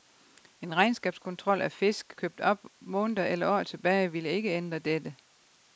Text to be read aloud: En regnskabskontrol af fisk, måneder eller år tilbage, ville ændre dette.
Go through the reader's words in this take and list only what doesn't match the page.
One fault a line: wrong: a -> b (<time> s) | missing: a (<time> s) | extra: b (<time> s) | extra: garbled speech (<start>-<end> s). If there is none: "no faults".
extra: købt op (2.2 s)
extra: ikke (4.3 s)